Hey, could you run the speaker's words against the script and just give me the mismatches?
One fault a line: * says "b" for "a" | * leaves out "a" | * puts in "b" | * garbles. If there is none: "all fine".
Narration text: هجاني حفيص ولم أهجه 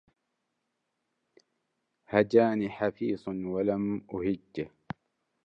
all fine